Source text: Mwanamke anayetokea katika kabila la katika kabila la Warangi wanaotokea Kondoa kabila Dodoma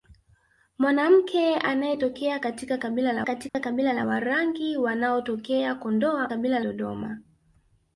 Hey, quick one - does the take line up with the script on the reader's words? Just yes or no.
yes